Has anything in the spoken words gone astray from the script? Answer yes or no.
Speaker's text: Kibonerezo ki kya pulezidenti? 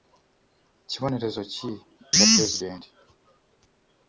no